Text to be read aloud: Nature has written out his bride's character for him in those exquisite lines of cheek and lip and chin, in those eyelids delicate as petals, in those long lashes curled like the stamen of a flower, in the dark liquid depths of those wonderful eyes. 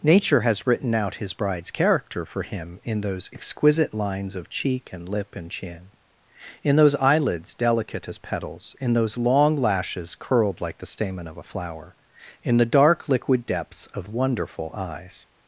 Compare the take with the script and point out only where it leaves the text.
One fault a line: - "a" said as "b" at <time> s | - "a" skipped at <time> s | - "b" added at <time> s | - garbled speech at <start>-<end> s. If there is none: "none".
- "those" skipped at 14.1 s